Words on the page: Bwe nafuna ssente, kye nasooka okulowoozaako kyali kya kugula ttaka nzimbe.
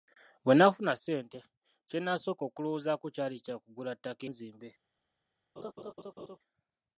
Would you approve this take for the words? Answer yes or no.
yes